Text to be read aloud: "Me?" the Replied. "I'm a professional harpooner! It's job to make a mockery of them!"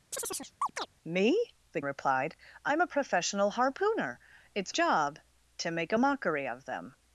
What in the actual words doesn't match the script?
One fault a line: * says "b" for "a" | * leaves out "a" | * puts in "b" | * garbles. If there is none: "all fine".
all fine